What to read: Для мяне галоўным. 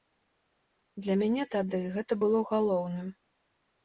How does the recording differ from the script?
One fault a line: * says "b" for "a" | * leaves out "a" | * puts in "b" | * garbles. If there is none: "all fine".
* puts in "тады гэта было"